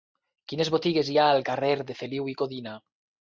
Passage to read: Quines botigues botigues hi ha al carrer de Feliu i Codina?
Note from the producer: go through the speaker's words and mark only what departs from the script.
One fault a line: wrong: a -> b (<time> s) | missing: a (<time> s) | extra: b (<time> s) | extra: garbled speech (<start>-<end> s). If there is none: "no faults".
missing: botigues (1.1 s)